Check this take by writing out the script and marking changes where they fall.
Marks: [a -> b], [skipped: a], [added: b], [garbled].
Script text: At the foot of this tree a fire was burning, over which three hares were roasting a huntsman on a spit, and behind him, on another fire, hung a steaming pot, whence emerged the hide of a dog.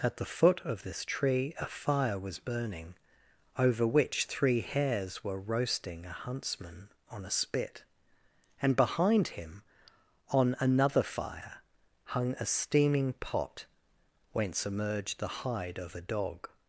At the foot of this tree a fire was burning, over which three hares were roasting a huntsman on a spit, and behind him, on another fire, hung a steaming pot, whence emerged the hide of a dog.